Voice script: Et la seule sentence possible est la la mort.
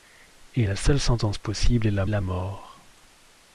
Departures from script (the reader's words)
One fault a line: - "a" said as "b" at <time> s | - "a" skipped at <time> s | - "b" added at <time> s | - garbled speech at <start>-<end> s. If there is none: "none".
none